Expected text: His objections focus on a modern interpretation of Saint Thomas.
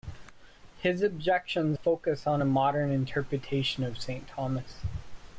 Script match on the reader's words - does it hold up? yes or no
yes